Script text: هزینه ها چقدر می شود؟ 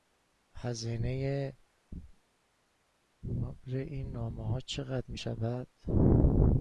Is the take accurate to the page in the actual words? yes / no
no